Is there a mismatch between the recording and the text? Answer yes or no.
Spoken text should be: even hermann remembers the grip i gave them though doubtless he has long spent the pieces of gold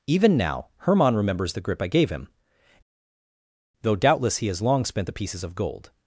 yes